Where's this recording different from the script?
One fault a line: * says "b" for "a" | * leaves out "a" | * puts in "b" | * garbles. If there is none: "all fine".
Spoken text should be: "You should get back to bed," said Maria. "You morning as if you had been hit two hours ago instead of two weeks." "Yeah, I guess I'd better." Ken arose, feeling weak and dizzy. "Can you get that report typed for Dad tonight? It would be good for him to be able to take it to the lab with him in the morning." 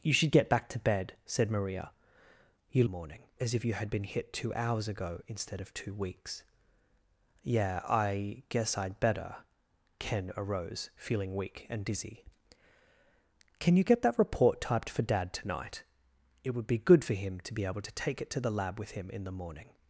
all fine